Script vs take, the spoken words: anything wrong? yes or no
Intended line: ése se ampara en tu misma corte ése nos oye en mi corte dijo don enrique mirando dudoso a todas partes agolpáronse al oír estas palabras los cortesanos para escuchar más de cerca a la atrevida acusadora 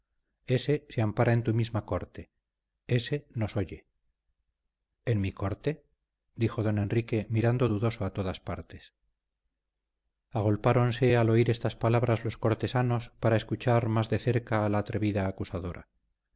no